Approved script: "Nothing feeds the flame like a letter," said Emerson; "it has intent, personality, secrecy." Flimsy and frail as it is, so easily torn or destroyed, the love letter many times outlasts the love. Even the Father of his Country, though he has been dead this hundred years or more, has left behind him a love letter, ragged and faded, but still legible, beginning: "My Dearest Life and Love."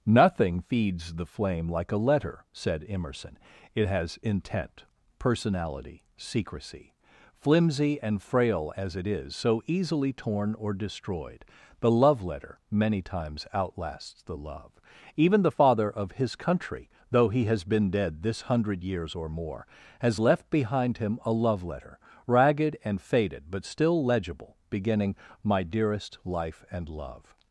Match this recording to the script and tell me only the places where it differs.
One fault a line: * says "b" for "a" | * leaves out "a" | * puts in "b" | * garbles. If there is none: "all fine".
all fine